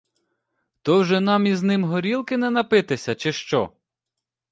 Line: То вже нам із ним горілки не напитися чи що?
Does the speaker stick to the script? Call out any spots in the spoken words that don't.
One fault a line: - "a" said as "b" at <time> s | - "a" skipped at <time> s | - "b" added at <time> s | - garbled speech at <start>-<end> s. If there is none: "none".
none